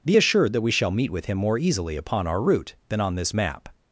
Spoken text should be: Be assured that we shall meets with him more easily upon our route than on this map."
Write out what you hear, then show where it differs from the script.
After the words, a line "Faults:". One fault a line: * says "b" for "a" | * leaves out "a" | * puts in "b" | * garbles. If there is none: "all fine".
Be assured that we shall meet with him more easily upon our route than on this map."
Faults:
* says "meet" for "meets"